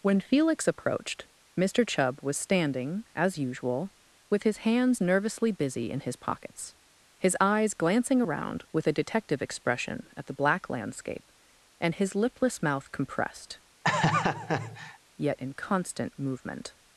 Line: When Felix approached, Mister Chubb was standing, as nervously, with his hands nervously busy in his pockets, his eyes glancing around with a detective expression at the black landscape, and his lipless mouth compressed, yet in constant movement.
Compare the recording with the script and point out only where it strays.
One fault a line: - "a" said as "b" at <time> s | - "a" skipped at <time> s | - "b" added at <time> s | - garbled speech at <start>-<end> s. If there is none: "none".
- "nervously" said as "usual" at 3.4 s